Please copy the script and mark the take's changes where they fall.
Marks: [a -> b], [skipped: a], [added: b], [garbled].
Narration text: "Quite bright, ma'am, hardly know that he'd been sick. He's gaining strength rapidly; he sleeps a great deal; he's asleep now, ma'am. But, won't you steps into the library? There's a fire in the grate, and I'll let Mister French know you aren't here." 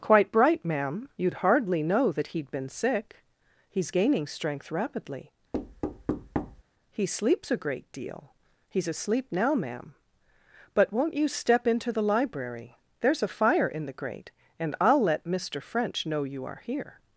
"Quite bright, ma'am, [added: you'd] hardly know that he'd been sick. He's gaining strength rapidly; he sleeps a great deal; he's asleep now, ma'am. But, won't you [steps -> step] into the library? There's a fire in the grate, and I'll let Mister French know you [aren't -> are] here."